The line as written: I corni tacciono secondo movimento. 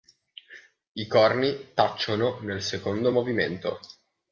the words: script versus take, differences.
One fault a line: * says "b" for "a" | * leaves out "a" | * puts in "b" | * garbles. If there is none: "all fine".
* puts in "nel"